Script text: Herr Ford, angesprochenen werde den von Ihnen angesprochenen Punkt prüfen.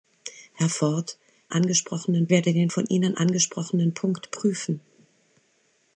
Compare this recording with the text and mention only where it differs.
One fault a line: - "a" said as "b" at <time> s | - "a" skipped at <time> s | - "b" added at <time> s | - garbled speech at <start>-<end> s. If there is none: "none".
none